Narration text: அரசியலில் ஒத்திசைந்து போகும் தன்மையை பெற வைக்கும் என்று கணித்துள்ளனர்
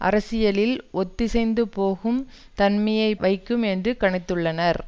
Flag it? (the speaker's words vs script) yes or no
yes